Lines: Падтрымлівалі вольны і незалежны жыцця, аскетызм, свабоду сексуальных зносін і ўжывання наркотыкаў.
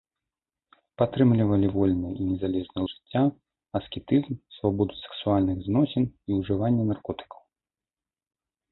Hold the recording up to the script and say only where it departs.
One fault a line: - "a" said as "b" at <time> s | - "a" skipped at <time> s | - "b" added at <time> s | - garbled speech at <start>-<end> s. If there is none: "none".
none